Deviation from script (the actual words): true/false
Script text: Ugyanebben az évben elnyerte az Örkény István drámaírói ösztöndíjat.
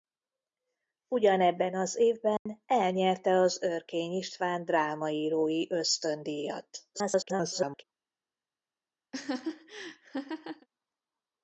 true